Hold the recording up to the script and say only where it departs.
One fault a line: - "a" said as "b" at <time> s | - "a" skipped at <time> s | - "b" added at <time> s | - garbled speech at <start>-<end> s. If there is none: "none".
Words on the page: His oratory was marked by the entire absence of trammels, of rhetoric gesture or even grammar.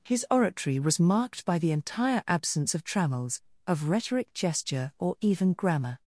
none